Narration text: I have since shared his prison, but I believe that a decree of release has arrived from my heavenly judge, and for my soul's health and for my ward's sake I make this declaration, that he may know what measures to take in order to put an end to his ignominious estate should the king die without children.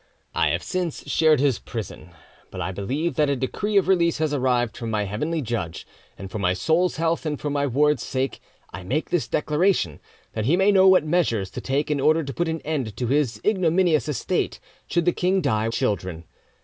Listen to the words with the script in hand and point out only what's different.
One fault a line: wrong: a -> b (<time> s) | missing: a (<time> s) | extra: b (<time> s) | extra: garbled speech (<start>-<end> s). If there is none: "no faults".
missing: without (15.7 s)